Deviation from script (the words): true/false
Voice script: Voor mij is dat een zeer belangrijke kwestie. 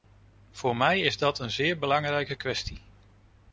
false